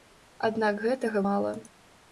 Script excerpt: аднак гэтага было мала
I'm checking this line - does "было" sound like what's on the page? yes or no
no